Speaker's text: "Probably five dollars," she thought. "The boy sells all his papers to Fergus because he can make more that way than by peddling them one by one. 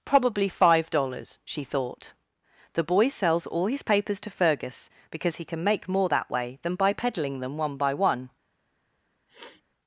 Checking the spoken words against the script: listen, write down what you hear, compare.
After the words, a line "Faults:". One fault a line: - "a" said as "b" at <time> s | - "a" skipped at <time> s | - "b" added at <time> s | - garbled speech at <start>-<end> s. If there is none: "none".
"Probably five dollars," she thought. "The boy sells all his papers to Fergus because he can make more that way than by peddling them one by one.
Faults:
none